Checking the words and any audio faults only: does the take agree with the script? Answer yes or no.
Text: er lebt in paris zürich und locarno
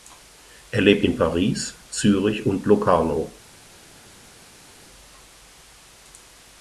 yes